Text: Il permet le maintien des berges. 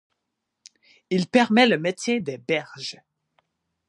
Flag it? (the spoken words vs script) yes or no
no